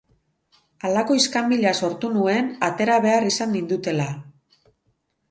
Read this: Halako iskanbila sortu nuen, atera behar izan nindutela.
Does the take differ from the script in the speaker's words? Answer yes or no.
no